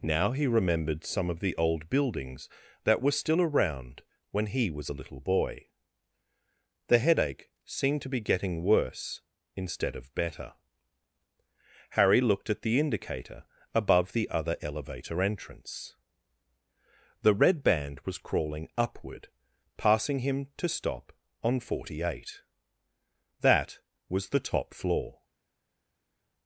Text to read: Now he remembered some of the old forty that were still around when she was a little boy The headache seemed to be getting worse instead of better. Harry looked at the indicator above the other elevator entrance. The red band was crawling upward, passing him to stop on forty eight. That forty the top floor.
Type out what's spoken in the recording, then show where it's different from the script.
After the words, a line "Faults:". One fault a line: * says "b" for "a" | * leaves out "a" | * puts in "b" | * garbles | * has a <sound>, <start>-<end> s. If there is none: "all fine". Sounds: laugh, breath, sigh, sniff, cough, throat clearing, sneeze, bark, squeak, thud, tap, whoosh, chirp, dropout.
Now he remembered some of the old buildings that were still around when he was a little boy The headache seemed to be getting worse instead of better. Harry looked at the indicator above the other elevator entrance. The red band was crawling upward, passing him to stop on forty eight. That was the top floor.
Faults:
* says "buildings" for "forty"
* says "he" for "she"
* says "was" for "forty"